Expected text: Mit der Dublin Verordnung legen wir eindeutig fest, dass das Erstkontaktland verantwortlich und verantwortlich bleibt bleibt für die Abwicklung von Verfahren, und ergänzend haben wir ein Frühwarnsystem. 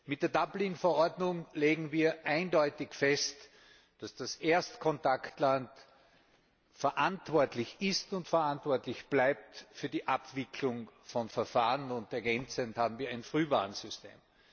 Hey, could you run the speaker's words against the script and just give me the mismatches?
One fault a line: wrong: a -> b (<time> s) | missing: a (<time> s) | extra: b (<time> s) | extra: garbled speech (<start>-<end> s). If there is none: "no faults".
extra: ist (7.8 s)
missing: bleibt (9.6 s)